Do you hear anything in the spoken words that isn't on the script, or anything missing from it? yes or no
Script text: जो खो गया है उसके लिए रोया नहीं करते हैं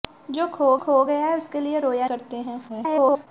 yes